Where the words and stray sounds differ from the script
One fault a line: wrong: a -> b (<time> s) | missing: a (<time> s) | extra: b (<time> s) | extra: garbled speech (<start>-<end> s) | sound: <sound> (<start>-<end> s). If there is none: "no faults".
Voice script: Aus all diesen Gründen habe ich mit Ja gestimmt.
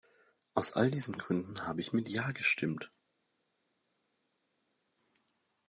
no faults